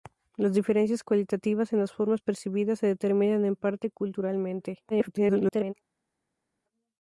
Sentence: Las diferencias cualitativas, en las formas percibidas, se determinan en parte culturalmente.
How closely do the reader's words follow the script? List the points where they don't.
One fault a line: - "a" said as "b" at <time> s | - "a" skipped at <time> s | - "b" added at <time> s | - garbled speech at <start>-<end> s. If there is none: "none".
- garbled speech at 4.9-5.7 s